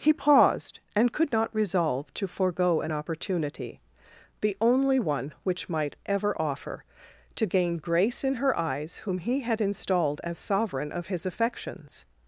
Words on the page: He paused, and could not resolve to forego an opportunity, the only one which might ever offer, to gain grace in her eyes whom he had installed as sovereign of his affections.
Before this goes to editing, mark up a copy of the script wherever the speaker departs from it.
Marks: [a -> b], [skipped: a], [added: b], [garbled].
He paused, and could not resolve to forego an opportunity, the only one which might ever offer, to gain grace in her eyes whom he had installed as sovereign of his affections.